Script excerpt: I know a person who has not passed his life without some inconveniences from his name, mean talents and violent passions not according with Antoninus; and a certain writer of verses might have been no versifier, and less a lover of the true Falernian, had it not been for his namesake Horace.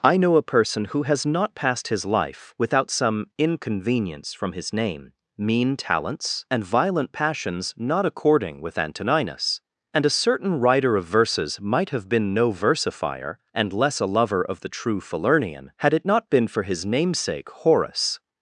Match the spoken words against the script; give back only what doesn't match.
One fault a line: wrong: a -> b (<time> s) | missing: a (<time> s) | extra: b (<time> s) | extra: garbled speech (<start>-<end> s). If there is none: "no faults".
wrong: inconveniences -> inconvenience (3.4 s)